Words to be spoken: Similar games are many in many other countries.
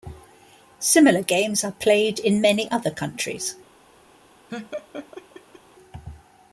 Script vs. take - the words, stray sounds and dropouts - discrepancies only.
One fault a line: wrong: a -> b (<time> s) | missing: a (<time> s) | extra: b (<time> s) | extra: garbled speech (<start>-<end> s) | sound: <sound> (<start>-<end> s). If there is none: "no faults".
wrong: many -> played (1.7 s)
sound: laugh (4.5-5.6 s)